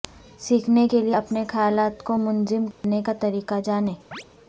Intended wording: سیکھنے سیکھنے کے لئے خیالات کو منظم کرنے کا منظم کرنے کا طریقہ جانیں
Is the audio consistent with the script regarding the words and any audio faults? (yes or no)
no